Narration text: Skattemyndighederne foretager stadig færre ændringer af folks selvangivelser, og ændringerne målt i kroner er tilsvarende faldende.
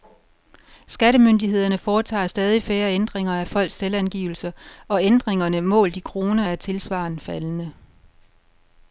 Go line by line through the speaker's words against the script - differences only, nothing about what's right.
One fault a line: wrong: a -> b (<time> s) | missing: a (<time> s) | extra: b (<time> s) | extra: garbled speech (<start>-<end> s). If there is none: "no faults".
no faults